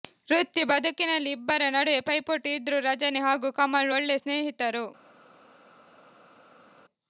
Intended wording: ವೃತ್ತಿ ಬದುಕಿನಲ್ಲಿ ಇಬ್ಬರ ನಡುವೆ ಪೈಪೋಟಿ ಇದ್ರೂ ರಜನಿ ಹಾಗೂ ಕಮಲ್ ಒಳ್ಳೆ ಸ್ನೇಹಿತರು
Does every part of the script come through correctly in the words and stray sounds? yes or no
yes